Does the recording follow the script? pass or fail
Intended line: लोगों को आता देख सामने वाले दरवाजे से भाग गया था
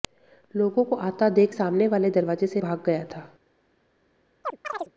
pass